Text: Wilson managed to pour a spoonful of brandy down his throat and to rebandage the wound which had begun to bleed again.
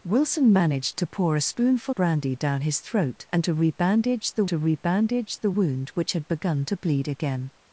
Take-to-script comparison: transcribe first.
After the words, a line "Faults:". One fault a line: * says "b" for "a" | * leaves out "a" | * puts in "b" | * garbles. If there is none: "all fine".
Wilson managed to pour a spoonful brandy down his throat and to rebandage the to rebandage the wound which had begun to bleed again.
Faults:
* leaves out "of"
* puts in "to rebandage the"